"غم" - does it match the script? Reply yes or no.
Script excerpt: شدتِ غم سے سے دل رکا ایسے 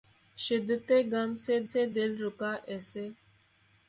yes